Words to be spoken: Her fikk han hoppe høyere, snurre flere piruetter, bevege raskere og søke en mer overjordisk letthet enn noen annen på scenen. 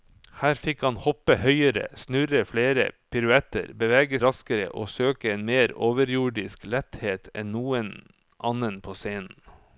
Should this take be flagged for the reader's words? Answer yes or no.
no